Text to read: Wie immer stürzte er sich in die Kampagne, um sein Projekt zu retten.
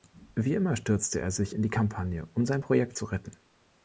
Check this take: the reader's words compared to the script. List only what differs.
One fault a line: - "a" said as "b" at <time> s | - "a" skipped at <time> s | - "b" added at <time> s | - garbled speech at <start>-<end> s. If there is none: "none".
none